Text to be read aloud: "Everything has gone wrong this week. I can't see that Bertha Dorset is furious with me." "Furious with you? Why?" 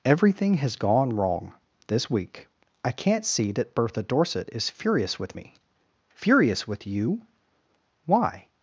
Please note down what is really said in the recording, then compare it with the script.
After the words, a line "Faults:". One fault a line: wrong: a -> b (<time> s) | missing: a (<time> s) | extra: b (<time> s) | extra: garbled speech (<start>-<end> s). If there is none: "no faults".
"Everything has gone wrong this week. I can't see that Bertha Dorset is furious with me." "Furious with you? Why?"
Faults:
no faults